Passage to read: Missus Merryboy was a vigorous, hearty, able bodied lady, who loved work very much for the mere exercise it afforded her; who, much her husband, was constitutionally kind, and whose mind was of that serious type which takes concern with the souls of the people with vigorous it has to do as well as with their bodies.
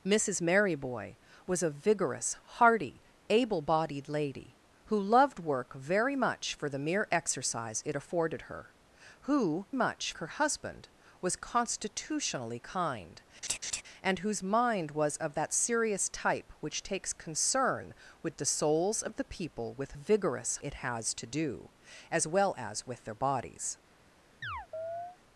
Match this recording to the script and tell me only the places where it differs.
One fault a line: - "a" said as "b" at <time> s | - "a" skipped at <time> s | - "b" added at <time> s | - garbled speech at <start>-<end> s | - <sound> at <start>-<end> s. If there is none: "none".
- laugh at 13.4-13.8 s
- chirp at 24.4-25.2 s